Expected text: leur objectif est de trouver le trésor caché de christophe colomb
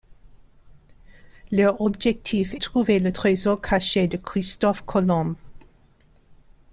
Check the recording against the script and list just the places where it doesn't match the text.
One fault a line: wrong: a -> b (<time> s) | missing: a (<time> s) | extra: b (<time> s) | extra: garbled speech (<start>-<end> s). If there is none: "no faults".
missing: est de (2.5 s)